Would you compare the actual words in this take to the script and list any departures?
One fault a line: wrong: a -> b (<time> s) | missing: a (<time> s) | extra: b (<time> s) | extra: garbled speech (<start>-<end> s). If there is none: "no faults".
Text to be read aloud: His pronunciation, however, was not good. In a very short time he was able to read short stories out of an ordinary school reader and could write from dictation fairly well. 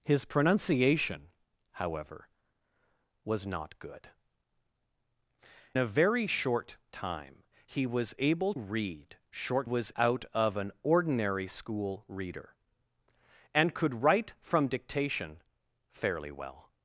missing: In (4.1 s)
missing: to (8.5 s)
wrong: stories -> was (9.6 s)